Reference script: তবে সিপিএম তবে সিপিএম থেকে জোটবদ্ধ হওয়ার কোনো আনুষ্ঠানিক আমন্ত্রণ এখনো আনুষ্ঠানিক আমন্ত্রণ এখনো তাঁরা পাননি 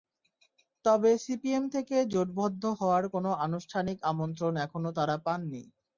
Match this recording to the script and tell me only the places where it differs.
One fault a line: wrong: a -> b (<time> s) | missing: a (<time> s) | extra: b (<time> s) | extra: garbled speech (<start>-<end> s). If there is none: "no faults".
missing: তবে সিপিএম (1.6 s)
missing: আনুষ্ঠানিক আমন্ত্রণ এখনো (4.9 s)